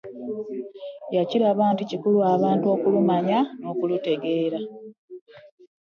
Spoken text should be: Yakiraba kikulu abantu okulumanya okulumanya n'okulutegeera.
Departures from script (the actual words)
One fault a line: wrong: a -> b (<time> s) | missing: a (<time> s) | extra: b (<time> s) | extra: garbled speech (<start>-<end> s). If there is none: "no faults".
extra: nti (1.7 s)
missing: okulumanya (3.4 s)